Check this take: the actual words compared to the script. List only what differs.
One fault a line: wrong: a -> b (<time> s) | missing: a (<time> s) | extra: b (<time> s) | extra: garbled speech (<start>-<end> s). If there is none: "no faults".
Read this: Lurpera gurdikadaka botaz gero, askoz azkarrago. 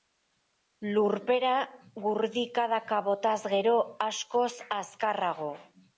no faults